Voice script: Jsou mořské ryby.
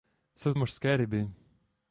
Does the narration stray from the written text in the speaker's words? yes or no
no